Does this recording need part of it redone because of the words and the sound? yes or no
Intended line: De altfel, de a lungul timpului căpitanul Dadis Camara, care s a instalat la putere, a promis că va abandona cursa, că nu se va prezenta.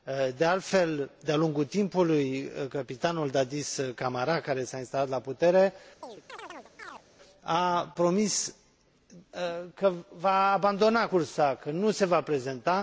yes